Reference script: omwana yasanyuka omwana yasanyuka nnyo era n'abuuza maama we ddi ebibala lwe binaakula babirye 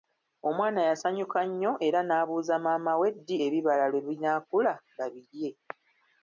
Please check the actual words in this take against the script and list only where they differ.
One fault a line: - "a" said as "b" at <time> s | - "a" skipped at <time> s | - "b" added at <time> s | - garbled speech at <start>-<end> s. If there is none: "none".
- "omwana yasanyuka" skipped at 1.4 s